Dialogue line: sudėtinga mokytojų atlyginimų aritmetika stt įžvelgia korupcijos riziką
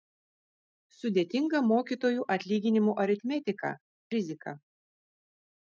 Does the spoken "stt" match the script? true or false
false